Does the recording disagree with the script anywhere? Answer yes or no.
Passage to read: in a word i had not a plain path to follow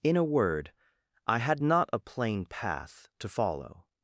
no